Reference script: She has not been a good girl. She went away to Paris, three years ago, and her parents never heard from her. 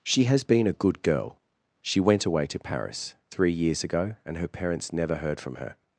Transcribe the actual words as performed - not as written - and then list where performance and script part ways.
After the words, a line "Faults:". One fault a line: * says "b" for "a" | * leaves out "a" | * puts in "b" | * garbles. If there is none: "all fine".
She has been a good girl. She went away to Paris, three years ago, and her parents never heard from her.
Faults:
* leaves out "not"